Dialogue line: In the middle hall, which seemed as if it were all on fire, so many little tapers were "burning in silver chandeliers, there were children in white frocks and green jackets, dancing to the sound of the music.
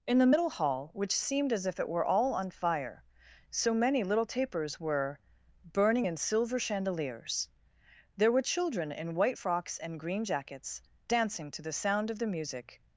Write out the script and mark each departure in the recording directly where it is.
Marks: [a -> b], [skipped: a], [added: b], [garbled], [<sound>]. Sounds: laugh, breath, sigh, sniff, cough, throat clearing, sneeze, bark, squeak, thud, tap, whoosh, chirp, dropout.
In the middle hall, which seemed as if it were all on fire, so many little tapers were "burning in silver chandeliers, there were children in white frocks and green jackets, dancing to the sound of the music.